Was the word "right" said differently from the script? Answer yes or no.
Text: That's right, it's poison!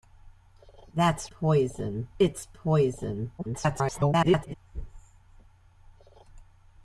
yes